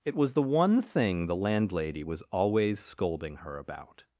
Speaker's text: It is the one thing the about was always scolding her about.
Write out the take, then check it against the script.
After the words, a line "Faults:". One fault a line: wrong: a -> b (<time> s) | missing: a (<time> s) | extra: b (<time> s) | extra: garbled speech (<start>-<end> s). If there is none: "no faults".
It was the one thing the landlady was always scolding her about.
Faults:
wrong: is -> was (0.2 s)
wrong: about -> landlady (1.3 s)